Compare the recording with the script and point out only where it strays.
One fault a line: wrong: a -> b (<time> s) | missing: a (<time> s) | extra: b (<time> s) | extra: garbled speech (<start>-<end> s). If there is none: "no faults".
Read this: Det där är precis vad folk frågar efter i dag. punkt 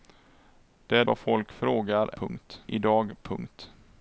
missing: där är precis (1.0 s)
wrong: efter -> punkt (2.1 s)